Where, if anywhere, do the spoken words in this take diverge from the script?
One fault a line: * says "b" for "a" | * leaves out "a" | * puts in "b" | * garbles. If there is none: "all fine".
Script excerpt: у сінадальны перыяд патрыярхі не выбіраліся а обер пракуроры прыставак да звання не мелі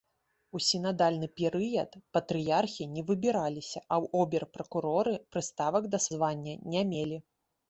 all fine